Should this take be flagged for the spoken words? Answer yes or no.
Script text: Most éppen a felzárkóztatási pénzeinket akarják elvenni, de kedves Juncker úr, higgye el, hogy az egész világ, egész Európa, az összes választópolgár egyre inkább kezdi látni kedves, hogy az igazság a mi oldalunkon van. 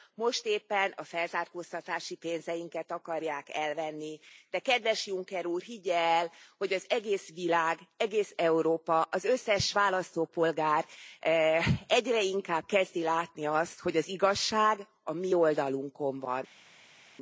yes